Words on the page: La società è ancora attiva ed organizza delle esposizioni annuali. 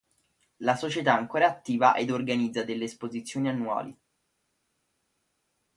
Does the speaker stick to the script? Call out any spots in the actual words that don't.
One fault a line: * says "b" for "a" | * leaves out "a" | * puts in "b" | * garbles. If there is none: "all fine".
all fine